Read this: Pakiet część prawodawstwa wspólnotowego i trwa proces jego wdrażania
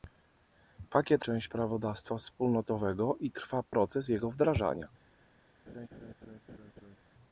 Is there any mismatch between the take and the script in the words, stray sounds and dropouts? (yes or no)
yes